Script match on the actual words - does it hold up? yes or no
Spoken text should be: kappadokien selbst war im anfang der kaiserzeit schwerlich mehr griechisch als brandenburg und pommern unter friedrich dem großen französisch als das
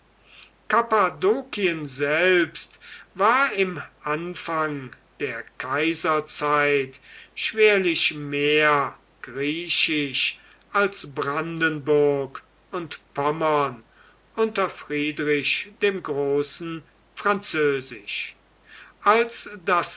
yes